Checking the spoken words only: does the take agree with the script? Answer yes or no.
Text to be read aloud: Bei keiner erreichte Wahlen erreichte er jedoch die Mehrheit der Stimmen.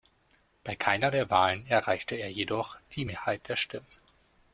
no